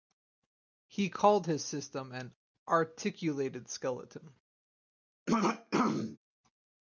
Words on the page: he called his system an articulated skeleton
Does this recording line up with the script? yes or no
yes